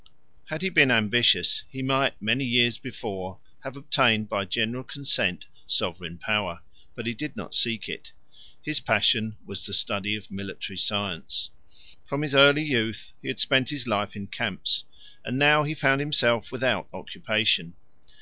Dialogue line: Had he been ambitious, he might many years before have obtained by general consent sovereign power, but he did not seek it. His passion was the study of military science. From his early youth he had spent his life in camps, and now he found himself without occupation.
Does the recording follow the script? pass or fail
pass